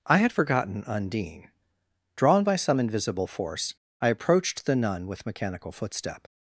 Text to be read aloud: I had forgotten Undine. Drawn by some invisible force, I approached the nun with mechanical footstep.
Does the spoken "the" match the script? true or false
true